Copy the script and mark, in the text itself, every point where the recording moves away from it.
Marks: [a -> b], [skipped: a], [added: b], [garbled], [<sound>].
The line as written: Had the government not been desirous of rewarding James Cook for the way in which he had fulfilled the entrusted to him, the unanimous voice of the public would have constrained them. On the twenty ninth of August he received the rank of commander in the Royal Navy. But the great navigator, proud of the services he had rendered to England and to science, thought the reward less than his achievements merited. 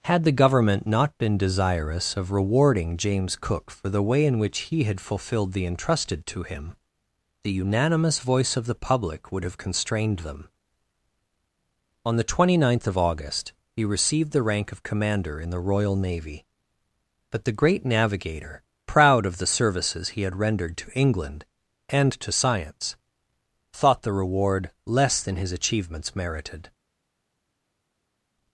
Had the government not been desirous of rewarding James Cook for the way in which he had fulfilled the entrusted to him, the unanimous voice of the public would have constrained them. On the twenty ninth of August he received the rank of commander in the Royal Navy. But the great navigator, proud of the services he had rendered to England and to science, thought the reward less than his achievements merited.